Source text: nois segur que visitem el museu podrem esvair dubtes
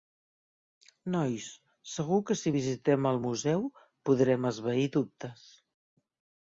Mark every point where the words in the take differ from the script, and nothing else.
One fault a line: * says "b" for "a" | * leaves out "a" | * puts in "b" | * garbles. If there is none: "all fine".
* puts in "si"